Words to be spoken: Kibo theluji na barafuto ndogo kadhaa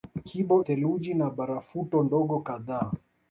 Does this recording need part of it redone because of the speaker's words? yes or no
no